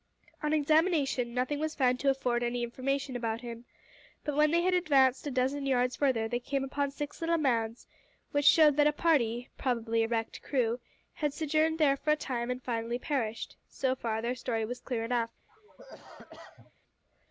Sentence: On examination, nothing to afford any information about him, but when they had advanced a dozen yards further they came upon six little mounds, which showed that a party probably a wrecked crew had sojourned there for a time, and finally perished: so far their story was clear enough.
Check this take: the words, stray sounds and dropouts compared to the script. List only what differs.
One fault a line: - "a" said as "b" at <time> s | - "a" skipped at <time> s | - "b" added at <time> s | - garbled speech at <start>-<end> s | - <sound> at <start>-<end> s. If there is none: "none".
- "was found" added at 1.6 s
- cough at 15.5-16.7 s